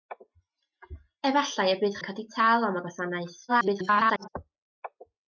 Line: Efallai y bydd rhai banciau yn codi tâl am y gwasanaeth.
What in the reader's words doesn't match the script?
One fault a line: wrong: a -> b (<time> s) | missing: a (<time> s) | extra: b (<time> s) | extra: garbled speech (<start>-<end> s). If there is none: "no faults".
missing: rhai banciau (2.0 s)
extra: garbled speech (3.5-4.3 s)